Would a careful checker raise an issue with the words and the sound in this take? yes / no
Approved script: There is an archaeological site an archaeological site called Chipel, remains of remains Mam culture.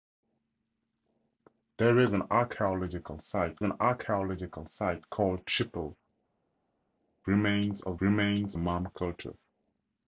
no